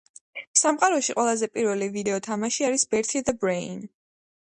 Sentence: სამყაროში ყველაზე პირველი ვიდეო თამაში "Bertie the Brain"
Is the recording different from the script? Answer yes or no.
yes